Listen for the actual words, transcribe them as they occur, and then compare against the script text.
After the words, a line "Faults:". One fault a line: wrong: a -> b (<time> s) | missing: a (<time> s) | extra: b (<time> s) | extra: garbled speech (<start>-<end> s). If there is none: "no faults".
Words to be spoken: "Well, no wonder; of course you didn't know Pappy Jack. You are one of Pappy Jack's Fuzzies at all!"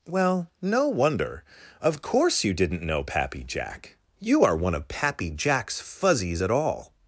"Well, no wonder; of course you didn't know Pappy Jack. You are one of Pappy Jack's Fuzzies at all!"
Faults:
no faults